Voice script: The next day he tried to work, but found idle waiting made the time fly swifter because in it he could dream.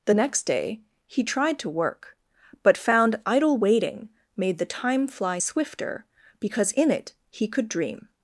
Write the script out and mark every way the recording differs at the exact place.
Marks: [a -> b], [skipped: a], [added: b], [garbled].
The next day he tried to work, but found idle waiting made the time fly swifter because in it he could dream.